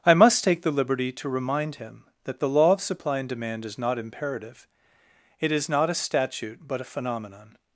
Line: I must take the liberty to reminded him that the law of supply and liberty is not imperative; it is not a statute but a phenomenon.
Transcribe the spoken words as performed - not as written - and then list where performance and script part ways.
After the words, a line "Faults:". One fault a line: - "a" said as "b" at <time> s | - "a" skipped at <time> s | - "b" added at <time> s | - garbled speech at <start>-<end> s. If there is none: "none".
I must take the liberty to remind him that the law of supply and demand is not imperative; it is not a statute but a phenomenon.
Faults:
- "reminded" said as "remind" at 1.3 s
- "liberty" said as "demand" at 3.3 s